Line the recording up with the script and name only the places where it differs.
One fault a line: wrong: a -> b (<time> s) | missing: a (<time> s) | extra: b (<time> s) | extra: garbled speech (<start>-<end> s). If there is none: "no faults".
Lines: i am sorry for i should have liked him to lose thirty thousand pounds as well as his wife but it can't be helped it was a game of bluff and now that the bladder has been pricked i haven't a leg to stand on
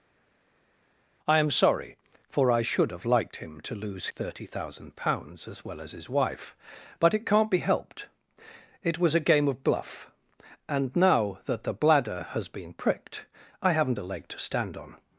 no faults